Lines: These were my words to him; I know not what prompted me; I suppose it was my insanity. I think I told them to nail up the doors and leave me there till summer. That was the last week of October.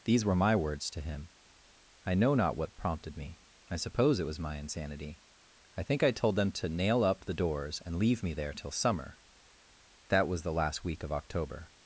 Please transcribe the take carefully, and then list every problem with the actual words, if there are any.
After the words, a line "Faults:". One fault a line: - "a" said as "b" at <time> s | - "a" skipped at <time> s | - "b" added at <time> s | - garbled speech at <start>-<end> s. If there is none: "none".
These were my words to him; I know not what prompted me; I suppose it was my insanity. I think I told them to nail up the doors and leave me there till summer. That was the last week of October.
Faults:
none